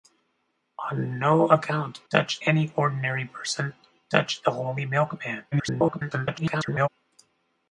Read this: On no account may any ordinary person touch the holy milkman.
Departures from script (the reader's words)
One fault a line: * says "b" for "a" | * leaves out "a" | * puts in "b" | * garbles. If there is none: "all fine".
* says "touch" for "may"
* garbles